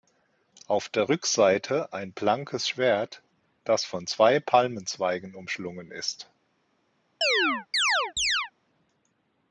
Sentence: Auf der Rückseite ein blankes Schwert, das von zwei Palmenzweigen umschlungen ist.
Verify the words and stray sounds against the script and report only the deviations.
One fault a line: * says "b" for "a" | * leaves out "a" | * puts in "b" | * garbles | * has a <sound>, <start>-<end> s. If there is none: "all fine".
* has a chirp, 7.2-8.5 s